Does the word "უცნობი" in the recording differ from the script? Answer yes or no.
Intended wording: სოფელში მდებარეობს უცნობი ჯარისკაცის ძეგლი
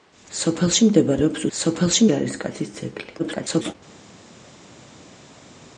yes